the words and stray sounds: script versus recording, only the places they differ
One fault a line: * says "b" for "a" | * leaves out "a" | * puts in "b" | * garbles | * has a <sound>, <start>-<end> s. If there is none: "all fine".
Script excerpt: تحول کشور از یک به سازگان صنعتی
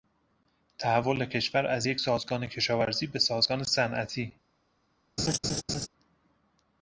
* puts in "سازگان کشاورزی"
* has a laugh, 5.2-5.9 s